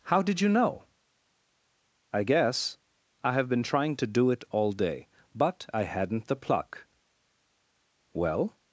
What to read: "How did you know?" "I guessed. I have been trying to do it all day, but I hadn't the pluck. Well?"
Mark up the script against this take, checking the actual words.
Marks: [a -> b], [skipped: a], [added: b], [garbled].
"How did you know?" "I [guessed. -> guess] I have been trying to do it all day, but I hadn't the pluck. Well?"